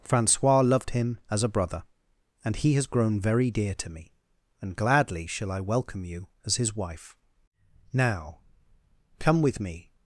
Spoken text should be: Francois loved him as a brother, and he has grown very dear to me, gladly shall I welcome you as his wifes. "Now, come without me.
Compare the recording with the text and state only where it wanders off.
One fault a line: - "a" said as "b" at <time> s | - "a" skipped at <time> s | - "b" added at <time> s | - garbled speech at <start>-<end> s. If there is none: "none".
- "and" added at 4.6 s
- "wifes" said as "wife" at 6.8 s
- "without" said as "with" at 9.4 s